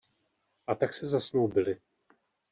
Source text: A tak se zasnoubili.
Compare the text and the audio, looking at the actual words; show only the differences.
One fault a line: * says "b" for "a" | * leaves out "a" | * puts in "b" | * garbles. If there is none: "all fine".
all fine